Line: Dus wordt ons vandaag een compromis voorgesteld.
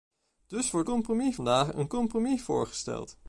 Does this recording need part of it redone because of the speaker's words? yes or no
yes